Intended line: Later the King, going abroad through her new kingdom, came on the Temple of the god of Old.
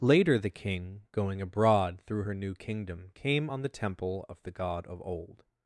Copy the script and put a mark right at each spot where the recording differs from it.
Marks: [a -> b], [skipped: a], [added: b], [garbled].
Later the King, going abroad through her new kingdom, came on the Temple of the god of Old.